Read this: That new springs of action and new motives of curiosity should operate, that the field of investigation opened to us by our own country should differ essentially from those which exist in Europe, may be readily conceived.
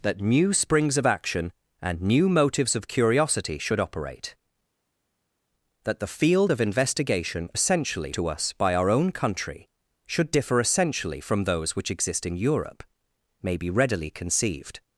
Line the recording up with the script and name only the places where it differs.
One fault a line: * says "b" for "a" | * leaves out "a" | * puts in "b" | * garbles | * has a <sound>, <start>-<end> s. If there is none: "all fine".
* says "essentially" for "opened"